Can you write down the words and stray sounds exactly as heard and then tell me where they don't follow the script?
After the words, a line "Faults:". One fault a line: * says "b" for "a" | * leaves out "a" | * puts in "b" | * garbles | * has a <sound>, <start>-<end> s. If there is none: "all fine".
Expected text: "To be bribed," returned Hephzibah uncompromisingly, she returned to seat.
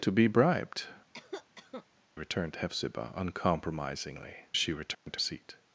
"To be bribed," returned Hephzibah uncompromisingly, she returned to seat.
Faults:
* has a cough, 1.1-1.9 s
* has a dropout, 4.9-5.1 s